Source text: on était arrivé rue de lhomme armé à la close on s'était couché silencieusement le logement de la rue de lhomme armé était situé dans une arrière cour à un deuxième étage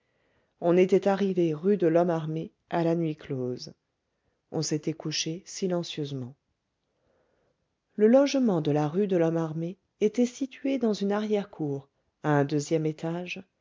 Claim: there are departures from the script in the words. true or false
true